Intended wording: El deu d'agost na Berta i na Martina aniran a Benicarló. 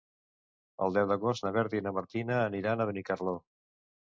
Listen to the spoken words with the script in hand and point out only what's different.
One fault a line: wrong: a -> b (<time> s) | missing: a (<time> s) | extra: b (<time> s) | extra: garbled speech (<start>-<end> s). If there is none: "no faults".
no faults